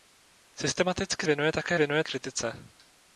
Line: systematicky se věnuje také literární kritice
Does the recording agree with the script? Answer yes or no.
no